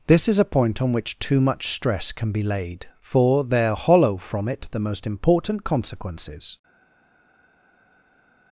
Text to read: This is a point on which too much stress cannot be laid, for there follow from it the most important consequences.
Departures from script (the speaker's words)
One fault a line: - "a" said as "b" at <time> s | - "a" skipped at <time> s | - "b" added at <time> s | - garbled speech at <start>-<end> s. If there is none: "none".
- "cannot" said as "can" at 2.1 s
- "follow" said as "hollow" at 3.8 s